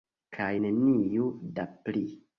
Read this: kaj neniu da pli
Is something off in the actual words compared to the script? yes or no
no